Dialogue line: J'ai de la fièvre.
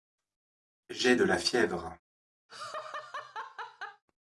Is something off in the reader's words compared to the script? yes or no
no